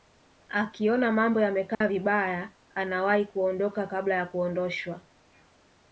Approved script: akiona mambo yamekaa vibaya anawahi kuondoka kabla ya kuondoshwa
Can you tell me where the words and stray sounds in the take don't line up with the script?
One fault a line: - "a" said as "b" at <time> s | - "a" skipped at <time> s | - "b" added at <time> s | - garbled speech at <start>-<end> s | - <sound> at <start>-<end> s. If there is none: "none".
- dropout at 1.7-1.8 s